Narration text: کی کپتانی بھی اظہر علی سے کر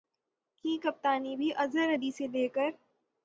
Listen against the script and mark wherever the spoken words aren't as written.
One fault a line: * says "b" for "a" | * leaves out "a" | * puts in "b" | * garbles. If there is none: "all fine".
* puts in "لے"